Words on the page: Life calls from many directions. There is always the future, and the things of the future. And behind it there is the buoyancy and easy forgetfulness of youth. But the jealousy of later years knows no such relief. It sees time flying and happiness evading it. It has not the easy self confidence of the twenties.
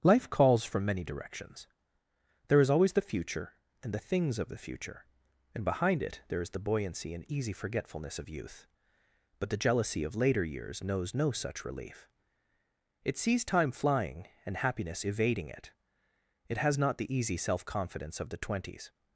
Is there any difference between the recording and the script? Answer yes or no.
no